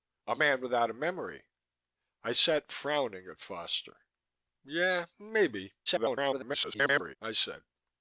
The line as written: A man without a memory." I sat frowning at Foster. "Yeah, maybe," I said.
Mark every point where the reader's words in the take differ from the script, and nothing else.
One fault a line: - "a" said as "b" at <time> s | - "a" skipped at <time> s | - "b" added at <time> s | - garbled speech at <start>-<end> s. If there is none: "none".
- garbled speech at 5.9-7.2 s